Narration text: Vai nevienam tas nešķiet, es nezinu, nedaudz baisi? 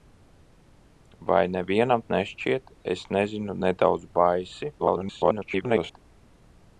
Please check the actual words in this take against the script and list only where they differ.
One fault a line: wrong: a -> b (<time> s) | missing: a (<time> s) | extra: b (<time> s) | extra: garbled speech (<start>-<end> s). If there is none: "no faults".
missing: tas (2.0 s)
extra: garbled speech (4.8-6.0 s)